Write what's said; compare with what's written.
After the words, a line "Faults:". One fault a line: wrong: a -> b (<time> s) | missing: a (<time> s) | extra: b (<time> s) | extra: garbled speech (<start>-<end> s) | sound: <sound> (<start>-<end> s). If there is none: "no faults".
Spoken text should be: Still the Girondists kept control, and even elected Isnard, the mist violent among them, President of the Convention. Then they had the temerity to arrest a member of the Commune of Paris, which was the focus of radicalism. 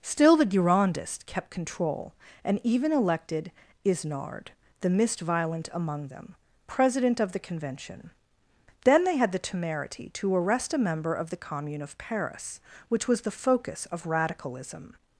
Still the Girondists kept control, and even elected Isnard, the mist violent among them, President of the Convention. Then they had the temerity to arrest a member of the Commune of Paris, which was the focus of radicalism.
Faults:
no faults